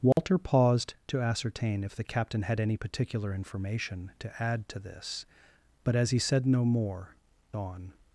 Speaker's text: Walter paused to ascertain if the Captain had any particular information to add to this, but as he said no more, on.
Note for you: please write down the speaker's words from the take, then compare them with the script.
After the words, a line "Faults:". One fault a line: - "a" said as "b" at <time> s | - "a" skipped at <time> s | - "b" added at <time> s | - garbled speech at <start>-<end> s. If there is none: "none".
Walter paused to ascertain if the Captain had any particular information to add to this, but as he said no more, on.
Faults:
none